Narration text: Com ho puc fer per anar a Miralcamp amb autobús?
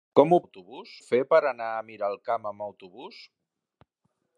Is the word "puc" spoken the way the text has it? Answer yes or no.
no